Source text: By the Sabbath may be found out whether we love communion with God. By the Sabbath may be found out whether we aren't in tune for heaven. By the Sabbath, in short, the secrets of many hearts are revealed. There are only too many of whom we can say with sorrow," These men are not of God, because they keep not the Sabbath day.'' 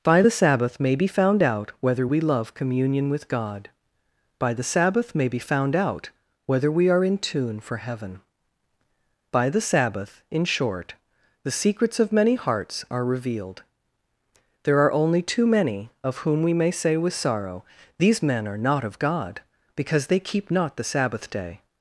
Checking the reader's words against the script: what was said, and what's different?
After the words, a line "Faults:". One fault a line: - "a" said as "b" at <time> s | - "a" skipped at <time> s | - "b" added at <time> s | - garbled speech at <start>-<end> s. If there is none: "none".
By the Sabbath may be found out whether we love communion with God. By the Sabbath may be found out whether we are in tune for heaven. By the Sabbath, in short, the secrets of many hearts are revealed. There are only too many of whom we may say with sorrow," These men are not of God, because they keep not the Sabbath day.''
Faults:
- "aren't" said as "are" at 6.9 s
- "can" said as "may" at 16.5 s